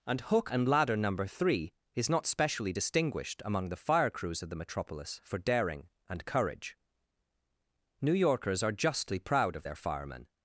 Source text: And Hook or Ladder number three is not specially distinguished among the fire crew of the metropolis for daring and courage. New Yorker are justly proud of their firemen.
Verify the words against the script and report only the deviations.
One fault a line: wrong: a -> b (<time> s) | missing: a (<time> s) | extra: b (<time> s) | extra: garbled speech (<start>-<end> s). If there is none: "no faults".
wrong: or -> and (0.5 s)
wrong: crew -> crews (4.1 s)
wrong: Yorker -> Yorkers (8.1 s)